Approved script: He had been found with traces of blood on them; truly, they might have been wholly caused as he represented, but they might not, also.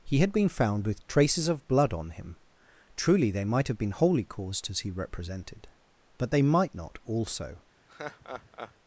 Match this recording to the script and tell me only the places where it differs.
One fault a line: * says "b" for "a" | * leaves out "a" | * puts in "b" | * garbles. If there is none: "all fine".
* says "him" for "them"